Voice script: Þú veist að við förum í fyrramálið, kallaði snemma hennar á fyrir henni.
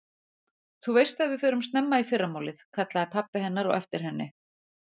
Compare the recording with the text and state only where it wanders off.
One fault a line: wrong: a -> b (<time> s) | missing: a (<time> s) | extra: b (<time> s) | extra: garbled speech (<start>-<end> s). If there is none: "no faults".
extra: snemma (1.7 s)
wrong: snemma -> pabbi (3.2 s)
wrong: fyrir -> eftir (3.8 s)